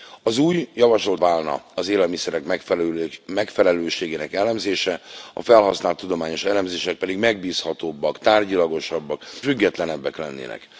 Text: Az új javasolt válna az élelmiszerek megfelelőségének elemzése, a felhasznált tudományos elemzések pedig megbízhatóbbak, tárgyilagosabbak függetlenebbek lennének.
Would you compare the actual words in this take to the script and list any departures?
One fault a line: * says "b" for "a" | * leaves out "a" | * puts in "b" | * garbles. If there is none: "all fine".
all fine